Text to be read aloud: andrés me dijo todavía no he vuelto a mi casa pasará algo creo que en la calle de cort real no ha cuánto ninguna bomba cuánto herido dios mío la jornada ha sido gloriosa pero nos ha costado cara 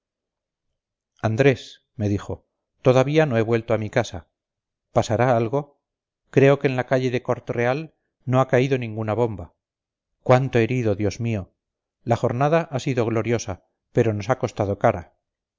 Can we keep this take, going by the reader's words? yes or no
no